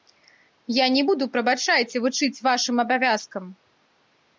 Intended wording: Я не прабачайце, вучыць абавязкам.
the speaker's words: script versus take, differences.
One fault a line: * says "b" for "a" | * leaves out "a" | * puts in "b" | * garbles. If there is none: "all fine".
* puts in "буду"
* puts in "вашым"